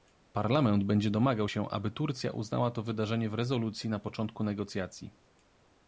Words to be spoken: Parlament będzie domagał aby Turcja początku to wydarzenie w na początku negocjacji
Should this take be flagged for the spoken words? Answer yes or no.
yes